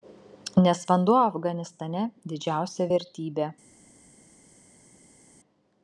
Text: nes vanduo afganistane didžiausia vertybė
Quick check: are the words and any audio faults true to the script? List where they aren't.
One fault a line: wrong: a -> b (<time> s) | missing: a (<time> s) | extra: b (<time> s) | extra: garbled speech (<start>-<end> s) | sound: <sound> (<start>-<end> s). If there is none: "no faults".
no faults